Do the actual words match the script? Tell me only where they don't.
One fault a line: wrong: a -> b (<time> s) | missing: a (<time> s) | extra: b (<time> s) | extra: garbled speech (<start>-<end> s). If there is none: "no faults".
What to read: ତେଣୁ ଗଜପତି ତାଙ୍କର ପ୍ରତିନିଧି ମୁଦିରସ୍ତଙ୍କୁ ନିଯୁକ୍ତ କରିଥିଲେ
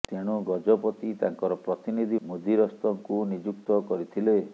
no faults